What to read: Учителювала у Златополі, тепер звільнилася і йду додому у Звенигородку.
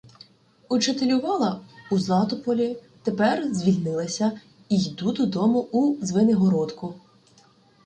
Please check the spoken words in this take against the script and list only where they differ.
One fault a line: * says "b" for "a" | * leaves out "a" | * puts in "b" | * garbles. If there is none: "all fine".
all fine